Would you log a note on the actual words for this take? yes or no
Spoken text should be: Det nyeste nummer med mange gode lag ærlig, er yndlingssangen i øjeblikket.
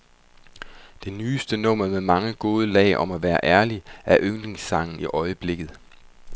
yes